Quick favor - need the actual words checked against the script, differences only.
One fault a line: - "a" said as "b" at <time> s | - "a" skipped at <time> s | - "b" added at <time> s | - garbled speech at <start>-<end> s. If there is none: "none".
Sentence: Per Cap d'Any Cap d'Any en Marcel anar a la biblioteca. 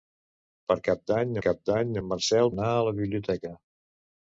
none